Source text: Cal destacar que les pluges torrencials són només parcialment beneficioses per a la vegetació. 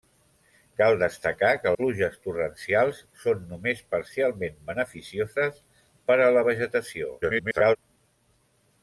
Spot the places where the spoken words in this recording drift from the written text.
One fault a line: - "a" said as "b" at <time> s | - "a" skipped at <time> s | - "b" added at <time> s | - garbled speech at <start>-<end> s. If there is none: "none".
- "les" skipped at 1.7 s
- garbled speech at 7.2-7.8 s